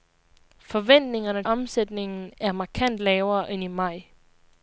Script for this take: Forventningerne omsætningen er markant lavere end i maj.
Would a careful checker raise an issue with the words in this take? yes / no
no